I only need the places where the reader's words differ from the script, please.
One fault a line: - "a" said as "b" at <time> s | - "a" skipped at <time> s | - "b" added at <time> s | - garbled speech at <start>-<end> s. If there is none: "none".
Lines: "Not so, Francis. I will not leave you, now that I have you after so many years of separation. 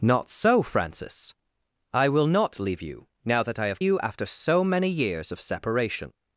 none